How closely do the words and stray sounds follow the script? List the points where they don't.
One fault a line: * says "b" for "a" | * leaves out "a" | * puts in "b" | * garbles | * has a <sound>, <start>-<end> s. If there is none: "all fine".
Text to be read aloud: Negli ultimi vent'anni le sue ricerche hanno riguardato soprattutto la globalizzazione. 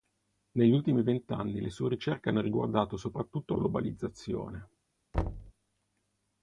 * leaves out "la"
* has a thud, 5.1-5.5 s